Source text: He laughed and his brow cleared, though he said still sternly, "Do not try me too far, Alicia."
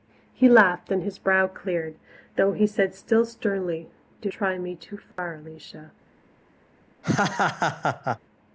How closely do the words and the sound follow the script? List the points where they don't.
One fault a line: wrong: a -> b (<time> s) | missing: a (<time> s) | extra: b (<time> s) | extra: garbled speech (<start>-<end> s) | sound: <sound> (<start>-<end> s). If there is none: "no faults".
missing: not (4.3 s)
sound: dropout (5.1-5.2 s)
sound: laugh (7.0-8.2 s)